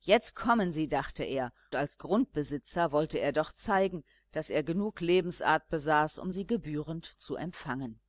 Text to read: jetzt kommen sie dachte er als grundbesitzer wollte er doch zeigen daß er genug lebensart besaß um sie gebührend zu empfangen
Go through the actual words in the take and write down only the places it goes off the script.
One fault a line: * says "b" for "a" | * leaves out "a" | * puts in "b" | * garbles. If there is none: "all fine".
all fine